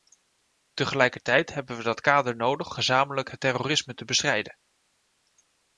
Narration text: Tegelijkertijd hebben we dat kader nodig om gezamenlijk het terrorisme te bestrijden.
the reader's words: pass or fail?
fail